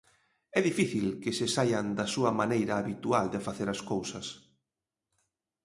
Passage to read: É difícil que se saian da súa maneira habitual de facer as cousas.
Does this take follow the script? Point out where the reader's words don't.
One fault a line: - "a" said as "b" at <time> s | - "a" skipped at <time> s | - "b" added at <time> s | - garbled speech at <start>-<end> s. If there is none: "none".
none